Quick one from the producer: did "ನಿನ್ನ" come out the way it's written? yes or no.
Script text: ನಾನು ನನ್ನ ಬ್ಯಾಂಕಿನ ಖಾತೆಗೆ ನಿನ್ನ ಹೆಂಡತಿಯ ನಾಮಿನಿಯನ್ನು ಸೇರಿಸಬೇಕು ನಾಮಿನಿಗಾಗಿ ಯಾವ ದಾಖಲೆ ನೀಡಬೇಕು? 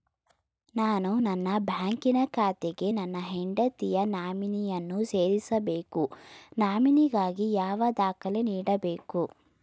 no